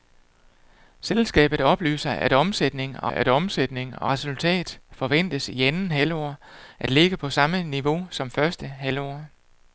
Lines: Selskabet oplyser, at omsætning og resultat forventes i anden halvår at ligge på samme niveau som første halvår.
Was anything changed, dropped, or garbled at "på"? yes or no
no